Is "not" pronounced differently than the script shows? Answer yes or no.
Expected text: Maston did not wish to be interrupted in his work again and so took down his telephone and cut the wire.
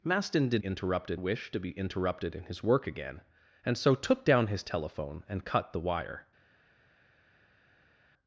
yes